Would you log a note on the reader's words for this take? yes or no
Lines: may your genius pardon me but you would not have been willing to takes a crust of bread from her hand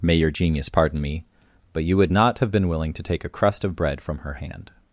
yes